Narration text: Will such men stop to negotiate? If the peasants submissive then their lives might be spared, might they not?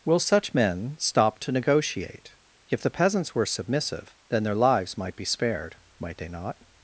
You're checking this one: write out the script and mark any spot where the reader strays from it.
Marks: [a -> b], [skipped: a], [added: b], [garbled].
Will such men stop to negotiate? If the peasants [added: were] submissive then their lives might be spared, might they not?